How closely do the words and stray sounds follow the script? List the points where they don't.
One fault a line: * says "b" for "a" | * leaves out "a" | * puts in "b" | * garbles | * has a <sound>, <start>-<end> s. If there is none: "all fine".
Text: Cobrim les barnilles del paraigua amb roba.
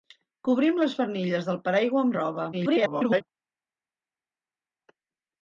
* garbles